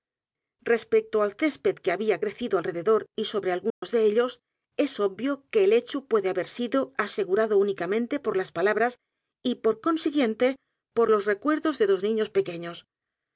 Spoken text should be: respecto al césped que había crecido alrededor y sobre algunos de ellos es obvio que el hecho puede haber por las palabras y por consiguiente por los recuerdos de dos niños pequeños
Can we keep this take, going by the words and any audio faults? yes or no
no